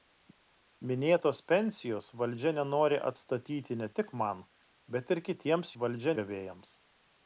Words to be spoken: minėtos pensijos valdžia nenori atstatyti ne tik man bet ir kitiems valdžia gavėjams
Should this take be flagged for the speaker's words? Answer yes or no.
no